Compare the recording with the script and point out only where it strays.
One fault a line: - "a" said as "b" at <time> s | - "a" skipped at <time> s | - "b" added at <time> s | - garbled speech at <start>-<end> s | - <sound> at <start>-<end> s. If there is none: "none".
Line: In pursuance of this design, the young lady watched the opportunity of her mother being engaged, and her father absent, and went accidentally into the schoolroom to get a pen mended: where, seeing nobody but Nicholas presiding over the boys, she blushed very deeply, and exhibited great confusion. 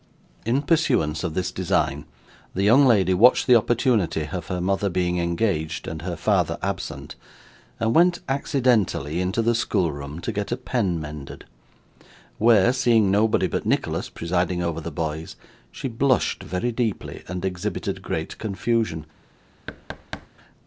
- thud at 19.7-20.3 s